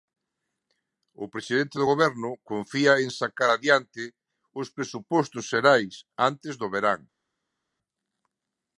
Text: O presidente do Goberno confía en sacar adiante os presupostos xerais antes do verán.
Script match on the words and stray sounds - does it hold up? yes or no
yes